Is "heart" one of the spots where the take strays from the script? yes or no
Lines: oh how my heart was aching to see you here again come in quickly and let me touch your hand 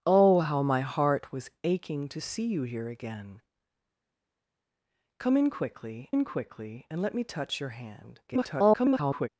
no